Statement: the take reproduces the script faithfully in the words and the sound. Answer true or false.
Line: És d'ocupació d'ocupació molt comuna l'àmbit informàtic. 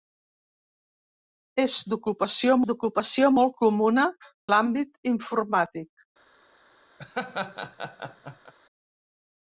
false